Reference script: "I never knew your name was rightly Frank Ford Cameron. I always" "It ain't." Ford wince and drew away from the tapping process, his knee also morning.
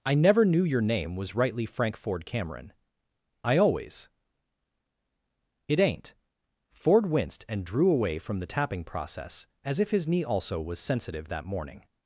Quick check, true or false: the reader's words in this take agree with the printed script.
false